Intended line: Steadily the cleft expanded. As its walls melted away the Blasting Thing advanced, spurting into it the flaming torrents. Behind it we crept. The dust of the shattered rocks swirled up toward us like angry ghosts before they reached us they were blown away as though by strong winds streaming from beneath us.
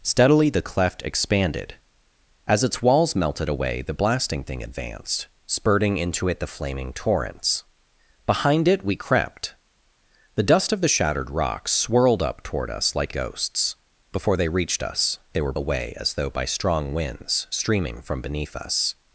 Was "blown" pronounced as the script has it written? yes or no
no